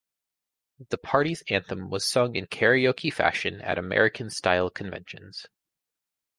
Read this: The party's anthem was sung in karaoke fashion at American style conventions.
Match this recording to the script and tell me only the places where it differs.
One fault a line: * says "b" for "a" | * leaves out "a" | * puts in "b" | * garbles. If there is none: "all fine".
all fine